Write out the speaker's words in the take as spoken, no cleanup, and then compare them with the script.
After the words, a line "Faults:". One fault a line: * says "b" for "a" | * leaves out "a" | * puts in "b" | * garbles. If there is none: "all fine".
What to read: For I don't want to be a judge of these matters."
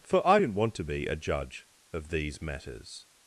For I didn't want to be a judge of these matters."
Faults:
* says "didn't" for "don't"